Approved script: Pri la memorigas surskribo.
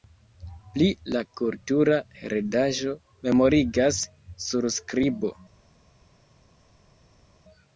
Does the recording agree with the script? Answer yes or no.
no